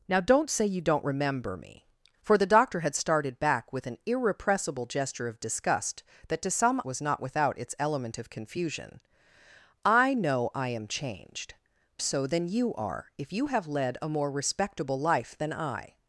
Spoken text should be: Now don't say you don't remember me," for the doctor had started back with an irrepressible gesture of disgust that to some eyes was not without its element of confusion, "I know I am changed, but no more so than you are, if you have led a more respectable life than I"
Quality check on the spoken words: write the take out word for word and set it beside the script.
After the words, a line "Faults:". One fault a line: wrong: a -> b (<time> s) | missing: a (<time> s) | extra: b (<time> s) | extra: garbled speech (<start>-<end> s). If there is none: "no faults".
Now don't say you don't remember me," for the doctor had started back with an irrepressible gesture of disgust that to some was not without its element of confusion, "I know I am changed, so than you are, if you have led a more respectable life than I"
Faults:
missing: eyes (6.8 s)
missing: but no more (11.5 s)